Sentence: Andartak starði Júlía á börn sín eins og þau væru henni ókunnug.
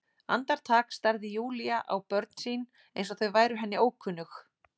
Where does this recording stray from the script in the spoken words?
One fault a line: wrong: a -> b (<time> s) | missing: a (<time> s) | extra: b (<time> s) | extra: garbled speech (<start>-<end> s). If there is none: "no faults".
no faults